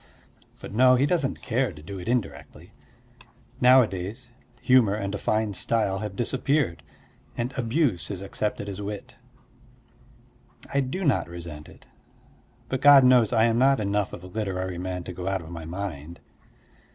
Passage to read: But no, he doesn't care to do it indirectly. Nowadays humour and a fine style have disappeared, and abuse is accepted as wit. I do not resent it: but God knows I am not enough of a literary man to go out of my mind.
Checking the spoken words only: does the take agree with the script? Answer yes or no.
yes